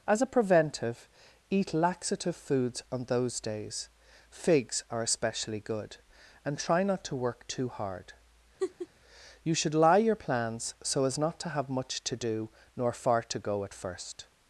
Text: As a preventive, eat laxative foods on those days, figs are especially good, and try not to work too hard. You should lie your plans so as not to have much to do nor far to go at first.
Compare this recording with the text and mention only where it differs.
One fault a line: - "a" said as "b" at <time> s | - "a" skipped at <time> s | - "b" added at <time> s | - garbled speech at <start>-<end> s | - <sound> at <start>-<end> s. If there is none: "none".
- laugh at 8.6-8.9 s